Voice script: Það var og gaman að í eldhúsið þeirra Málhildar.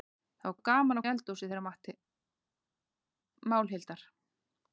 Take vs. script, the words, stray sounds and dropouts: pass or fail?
pass